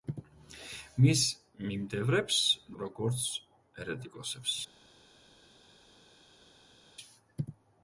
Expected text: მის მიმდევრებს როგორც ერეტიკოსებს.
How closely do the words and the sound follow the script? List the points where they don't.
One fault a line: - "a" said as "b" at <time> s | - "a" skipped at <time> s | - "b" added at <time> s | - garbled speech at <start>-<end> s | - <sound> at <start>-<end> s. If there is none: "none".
none